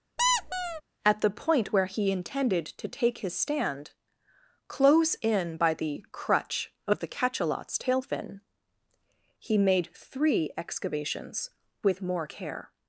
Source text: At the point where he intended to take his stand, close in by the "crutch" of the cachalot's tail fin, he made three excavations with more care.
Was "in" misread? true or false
false